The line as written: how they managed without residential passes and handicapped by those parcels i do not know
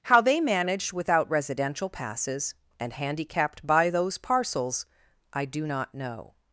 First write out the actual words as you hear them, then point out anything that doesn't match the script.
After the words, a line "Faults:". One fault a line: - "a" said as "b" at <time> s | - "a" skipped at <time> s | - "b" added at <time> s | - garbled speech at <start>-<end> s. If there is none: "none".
how they managed without residential passes and handicapped by those parcels i do not know
Faults:
none